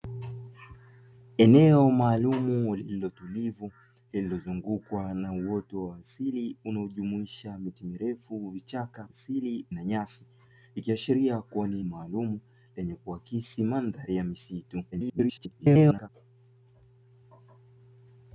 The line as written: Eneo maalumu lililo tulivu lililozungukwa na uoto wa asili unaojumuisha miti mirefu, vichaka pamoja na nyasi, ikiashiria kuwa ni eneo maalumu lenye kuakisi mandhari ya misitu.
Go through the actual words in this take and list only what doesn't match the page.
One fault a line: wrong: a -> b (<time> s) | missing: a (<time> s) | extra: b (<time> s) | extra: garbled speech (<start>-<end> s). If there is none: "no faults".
wrong: pamoja -> asili (9.1 s)
missing: eneo (11.8 s)
extra: garbled speech (14.9-16.1 s)